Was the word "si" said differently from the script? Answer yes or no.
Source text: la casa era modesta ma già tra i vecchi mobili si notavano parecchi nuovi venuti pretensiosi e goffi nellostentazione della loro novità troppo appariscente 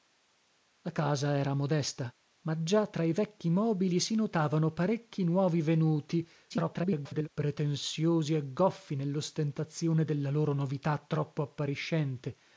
no